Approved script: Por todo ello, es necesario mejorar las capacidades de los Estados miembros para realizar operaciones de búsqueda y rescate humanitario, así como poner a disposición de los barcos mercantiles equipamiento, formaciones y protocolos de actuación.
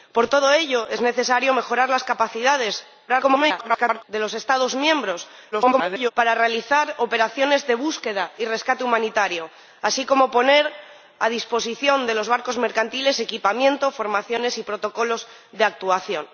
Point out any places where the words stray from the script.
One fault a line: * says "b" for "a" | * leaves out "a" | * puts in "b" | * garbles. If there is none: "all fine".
* garbles
* garbles